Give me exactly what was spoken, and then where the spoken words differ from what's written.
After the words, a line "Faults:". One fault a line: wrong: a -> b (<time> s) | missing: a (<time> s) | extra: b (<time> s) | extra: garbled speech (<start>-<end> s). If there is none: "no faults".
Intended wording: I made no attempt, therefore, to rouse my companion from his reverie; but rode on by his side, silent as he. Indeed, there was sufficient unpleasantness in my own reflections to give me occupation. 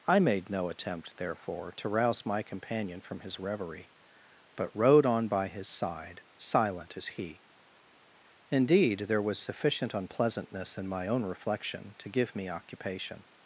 I made no attempt, therefore, to rouse my companion from his reverie; but rode on by his side, silent as he. Indeed, there was sufficient unpleasantness in my own reflection to give me occupation.
Faults:
wrong: reflections -> reflection (11.2 s)